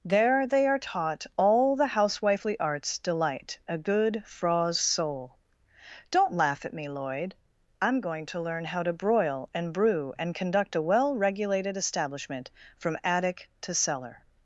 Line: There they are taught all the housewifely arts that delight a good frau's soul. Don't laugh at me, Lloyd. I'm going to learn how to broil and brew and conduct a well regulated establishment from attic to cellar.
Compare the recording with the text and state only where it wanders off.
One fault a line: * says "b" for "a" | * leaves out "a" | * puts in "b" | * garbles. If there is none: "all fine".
* leaves out "that"